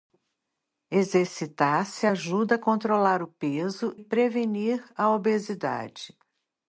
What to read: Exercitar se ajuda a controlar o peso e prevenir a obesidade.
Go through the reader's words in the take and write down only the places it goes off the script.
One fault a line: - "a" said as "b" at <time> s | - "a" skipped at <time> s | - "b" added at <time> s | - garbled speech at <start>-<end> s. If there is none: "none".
- "e" skipped at 4.0 s